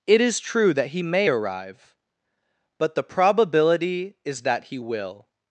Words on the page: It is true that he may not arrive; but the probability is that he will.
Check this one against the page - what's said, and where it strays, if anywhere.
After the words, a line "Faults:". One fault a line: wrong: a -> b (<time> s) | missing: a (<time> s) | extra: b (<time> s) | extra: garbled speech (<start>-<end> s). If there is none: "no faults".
It is true that he may arrive; but the probability is that he will.
Faults:
missing: not (1.3 s)